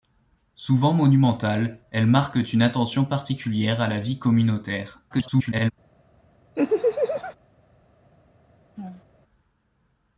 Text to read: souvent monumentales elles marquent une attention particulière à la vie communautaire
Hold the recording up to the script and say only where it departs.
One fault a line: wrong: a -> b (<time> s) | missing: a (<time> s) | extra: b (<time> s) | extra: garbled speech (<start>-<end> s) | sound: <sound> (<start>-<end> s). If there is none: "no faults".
extra: garbled speech (5.1-5.7 s)
sound: laugh (6.6-7.4 s)
sound: laugh (8.8-9.0 s)